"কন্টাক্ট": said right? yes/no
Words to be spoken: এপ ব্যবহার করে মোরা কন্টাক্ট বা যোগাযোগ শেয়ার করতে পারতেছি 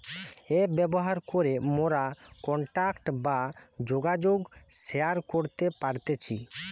yes